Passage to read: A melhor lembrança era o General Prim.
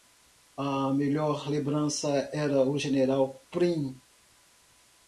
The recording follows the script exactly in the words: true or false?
true